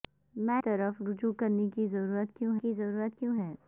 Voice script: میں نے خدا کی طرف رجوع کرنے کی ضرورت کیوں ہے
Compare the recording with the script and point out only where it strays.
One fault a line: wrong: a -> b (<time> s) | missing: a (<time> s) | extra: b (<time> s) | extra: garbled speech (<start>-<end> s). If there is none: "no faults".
wrong: نے خدا -> طرف رجوع کرنے (0.6 s)
wrong: طرف رجوع کرنے -> ضرورت کیوں (1.9 s)